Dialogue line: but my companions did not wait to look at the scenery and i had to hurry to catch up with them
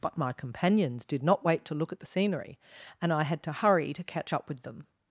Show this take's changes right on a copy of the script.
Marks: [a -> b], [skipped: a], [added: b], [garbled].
but my companions did not wait to look at the scenery and i had to hurry to catch up with them